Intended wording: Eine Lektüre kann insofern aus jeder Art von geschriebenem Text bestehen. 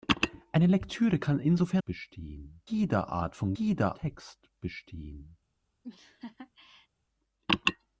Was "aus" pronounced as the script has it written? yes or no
no